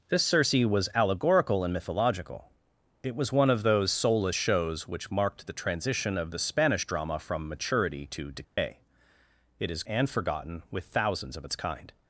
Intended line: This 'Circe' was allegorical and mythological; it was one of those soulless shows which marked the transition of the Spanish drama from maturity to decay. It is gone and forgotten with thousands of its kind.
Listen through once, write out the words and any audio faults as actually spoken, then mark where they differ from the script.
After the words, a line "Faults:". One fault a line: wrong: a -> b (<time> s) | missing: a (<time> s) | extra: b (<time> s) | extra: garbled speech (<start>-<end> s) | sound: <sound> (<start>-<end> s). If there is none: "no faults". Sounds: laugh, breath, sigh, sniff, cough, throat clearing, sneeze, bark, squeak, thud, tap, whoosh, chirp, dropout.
This 'Circe' was allegorical and mythological; it was one of those soulless shows which marked the transition of the Spanish drama from maturity to decay. It is and forgotten with thousands of its kind.
Faults:
sound: dropout (8.4-8.6 s)
missing: gone (9.8 s)